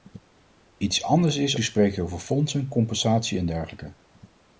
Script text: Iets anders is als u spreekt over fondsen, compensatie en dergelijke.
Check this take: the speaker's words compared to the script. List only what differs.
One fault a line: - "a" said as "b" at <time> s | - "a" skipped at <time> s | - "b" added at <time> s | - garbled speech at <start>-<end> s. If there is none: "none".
- "als" skipped at 1.6 s